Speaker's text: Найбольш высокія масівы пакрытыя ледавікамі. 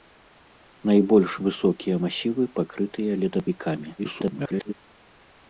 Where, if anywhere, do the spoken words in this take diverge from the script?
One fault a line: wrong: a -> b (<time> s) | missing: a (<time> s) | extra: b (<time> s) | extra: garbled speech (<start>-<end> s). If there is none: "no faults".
extra: garbled speech (4.0-4.7 s)